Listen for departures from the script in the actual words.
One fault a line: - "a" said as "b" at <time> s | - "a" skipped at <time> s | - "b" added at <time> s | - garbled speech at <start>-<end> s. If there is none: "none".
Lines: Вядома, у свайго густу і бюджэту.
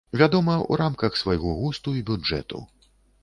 - "рамках" added at 0.8 s